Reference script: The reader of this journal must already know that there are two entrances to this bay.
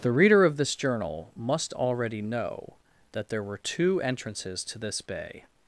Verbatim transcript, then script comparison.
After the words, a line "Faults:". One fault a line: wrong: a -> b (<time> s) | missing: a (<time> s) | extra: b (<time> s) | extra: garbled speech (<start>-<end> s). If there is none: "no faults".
The reader of this journal must already know that there were two entrances to this bay.
Faults:
wrong: are -> were (3.4 s)